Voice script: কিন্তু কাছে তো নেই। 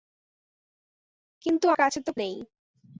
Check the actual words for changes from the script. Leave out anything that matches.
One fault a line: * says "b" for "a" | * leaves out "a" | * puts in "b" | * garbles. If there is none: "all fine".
all fine